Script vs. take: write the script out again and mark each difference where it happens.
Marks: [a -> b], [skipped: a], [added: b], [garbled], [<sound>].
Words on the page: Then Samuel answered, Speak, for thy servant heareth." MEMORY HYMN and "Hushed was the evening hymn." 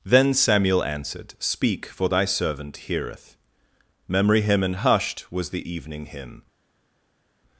Then Samuel answered, Speak, for thy servant heareth." MEMORY HYMN and "Hushed was the evening hymn."